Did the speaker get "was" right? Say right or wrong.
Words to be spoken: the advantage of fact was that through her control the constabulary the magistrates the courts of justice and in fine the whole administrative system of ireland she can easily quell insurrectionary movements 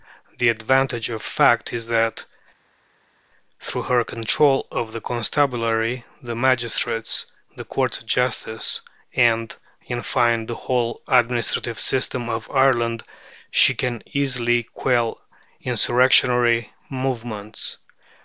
wrong